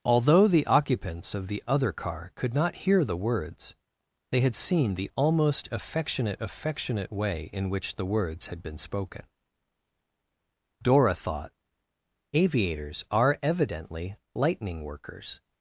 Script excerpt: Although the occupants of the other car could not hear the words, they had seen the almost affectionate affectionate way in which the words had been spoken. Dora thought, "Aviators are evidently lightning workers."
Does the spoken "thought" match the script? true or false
true